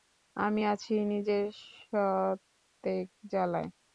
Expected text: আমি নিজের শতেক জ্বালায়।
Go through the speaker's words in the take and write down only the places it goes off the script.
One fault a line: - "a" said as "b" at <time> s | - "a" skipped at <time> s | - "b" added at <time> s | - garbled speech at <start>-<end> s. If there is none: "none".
- "আছি" added at 0.7 s